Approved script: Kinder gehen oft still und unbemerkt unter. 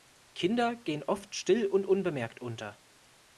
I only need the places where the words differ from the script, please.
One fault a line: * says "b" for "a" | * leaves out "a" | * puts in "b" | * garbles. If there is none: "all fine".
all fine